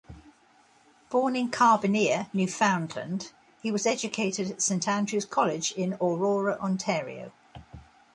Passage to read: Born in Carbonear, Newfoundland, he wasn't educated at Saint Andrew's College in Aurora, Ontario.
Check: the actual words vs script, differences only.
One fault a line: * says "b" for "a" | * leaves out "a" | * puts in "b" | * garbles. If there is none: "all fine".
* says "was" for "wasn't"